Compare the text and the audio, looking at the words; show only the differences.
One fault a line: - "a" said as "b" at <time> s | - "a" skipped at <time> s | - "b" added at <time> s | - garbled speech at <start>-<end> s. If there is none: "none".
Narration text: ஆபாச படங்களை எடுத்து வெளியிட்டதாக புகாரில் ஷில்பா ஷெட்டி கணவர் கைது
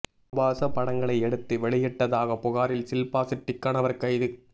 none